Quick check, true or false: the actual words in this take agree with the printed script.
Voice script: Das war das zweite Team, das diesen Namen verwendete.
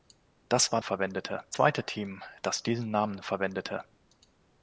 false